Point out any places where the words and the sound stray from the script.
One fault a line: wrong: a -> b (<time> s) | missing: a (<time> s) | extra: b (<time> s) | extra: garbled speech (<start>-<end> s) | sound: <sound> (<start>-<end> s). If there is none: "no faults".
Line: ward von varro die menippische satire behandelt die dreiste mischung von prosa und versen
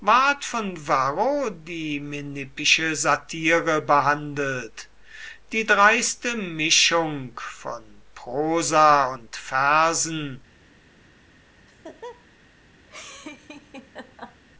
sound: laugh (11.7-12.3 s)
sound: laugh (12.9-14.4 s)